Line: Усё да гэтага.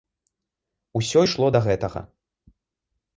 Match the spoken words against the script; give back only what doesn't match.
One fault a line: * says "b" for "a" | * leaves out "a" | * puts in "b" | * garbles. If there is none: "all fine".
* puts in "ішло"